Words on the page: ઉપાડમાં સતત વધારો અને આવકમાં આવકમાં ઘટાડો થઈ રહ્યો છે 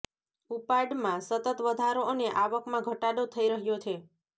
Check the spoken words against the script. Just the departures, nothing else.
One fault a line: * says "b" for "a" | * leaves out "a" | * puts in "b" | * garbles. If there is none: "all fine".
* leaves out "આવકમાં"